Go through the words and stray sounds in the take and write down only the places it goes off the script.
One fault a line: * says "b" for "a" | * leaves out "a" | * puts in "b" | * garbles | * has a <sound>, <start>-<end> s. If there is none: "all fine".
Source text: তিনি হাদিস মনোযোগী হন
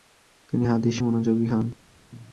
all fine